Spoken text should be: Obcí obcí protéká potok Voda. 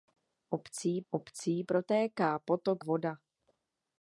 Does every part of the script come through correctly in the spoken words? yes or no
yes